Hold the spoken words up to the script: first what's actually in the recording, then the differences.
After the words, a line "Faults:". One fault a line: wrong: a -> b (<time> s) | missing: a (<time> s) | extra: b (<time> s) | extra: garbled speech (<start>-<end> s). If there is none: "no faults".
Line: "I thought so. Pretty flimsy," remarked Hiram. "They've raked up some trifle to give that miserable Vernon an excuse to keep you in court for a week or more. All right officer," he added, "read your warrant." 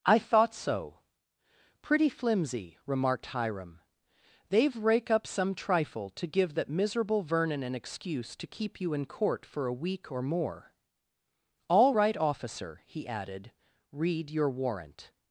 "I thought so. Pretty flimsy," remarked Hiram. "They've rake up some trifle to give that miserable Vernon an excuse to keep you in court for a week or more. All right officer," he added, "read your warrant."
Faults:
wrong: raked -> rake (4.8 s)